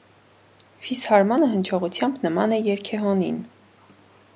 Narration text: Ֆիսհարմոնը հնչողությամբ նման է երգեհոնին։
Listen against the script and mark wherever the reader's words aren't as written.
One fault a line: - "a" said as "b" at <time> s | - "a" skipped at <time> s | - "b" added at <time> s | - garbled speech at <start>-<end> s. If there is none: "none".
none